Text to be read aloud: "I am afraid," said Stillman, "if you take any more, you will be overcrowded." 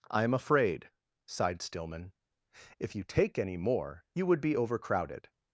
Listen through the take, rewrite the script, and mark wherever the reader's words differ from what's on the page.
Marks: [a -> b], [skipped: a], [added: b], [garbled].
"I am afraid," [said -> sighed] Stillman, "if you take any more, you [will -> would] be overcrowded."